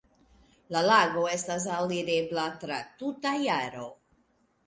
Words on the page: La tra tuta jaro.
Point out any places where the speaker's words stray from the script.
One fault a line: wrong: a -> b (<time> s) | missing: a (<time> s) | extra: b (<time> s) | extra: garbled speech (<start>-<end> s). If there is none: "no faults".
extra: lago estas alirebla (0.8 s)